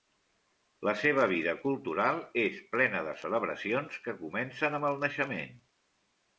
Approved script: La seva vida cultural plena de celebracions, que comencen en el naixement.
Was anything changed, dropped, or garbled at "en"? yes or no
yes